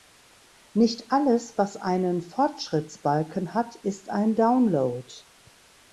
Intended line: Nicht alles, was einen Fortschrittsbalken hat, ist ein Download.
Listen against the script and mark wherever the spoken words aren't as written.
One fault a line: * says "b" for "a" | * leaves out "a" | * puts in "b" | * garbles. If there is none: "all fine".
all fine